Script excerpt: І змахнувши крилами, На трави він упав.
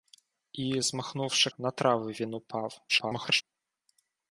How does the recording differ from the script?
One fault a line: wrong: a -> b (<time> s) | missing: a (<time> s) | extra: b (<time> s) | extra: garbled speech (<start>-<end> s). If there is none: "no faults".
missing: крилами (1.5 s)
extra: garbled speech (2.9-3.4 s)